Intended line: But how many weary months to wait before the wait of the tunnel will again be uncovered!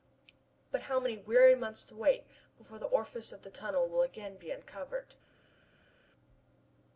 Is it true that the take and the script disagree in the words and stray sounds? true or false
true